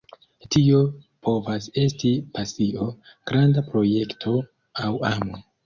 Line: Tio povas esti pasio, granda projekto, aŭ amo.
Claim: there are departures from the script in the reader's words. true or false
false